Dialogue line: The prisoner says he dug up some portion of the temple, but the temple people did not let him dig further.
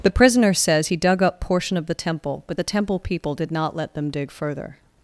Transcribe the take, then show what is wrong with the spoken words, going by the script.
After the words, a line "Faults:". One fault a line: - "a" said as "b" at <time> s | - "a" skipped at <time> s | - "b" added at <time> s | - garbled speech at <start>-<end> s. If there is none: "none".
The prisoner says he dug up portion of the temple, but the temple people did not let them dig further.
Faults:
- "some" skipped at 1.4 s
- "him" said as "them" at 3.9 s